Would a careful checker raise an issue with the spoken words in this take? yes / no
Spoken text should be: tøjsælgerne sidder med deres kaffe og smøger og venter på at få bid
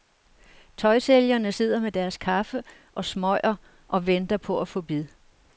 no